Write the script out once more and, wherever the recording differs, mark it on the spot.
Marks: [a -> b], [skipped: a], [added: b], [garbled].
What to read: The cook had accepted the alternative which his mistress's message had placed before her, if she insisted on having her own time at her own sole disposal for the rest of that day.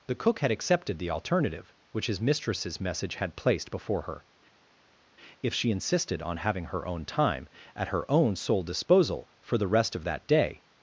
The cook had accepted the alternative which his mistress's message had placed before her, if she insisted on having her own time at her own sole disposal for the rest of that day.